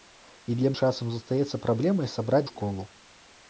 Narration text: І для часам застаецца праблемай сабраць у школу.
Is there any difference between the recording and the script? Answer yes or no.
no